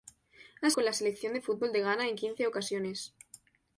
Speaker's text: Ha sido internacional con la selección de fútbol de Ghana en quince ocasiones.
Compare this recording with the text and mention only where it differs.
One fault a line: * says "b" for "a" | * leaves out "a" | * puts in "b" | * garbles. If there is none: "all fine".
* leaves out "sido internacional"